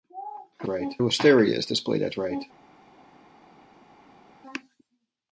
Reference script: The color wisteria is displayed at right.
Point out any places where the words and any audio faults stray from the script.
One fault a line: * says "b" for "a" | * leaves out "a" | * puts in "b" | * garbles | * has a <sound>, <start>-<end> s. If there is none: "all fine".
* says "right" for "color"